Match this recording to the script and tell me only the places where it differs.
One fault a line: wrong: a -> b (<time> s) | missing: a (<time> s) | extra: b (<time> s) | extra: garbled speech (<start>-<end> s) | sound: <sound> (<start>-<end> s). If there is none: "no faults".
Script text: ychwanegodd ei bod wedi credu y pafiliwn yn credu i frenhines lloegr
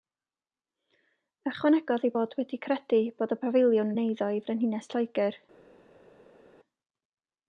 extra: bod (3.2 s)
wrong: credu -> eiddo (4.1 s)